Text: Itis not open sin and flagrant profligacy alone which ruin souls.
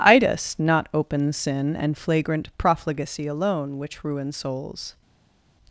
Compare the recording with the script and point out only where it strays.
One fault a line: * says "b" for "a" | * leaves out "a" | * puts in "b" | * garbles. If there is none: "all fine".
all fine